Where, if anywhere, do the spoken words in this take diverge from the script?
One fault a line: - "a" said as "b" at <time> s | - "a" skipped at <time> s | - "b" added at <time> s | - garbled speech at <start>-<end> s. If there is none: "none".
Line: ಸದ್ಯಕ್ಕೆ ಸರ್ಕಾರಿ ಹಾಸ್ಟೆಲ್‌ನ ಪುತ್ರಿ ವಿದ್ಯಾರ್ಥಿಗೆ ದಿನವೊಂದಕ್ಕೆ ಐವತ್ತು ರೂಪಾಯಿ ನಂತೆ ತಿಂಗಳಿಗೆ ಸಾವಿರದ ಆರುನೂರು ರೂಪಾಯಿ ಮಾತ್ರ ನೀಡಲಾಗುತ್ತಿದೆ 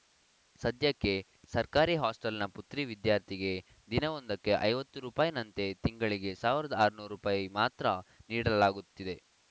none